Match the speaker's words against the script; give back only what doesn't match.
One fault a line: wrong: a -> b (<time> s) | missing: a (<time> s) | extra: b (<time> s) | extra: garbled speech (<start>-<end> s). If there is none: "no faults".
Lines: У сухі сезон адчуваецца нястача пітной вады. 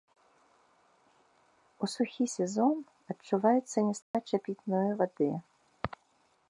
no faults